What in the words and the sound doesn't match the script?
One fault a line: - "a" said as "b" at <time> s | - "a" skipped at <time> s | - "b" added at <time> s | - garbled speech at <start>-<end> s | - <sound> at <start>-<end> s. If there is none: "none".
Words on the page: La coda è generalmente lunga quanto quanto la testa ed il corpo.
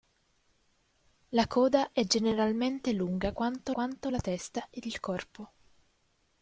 none